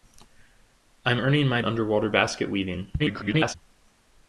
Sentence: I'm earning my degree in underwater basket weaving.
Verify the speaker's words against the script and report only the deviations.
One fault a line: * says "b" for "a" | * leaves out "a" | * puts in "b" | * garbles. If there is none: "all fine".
* leaves out "degree in"
* garbles